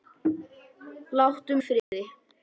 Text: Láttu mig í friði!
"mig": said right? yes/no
no